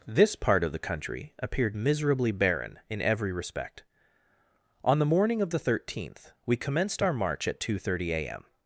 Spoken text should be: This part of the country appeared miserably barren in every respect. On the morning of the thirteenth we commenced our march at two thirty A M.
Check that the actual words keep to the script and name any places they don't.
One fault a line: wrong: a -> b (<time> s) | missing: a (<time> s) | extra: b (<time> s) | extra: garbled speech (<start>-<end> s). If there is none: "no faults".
no faults